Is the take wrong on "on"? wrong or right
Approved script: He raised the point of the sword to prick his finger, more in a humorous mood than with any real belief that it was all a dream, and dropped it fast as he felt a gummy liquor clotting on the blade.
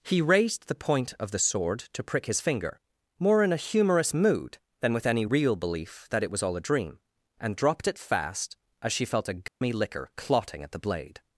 wrong